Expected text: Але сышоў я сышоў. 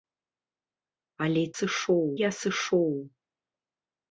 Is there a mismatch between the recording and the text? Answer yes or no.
no